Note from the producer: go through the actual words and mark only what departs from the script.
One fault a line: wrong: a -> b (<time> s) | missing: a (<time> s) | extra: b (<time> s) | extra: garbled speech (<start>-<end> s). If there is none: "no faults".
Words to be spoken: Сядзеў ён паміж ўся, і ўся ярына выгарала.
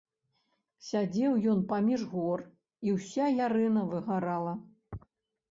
wrong: ўся -> гор (2.1 s)